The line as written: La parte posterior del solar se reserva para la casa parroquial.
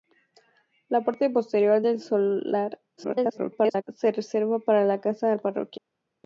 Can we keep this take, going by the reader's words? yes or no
no